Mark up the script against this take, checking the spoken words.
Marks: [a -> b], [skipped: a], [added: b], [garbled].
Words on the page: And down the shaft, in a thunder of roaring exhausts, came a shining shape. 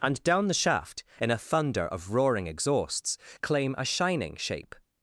And down the shaft, in a thunder of roaring exhausts, [came -> claim] a shining shape.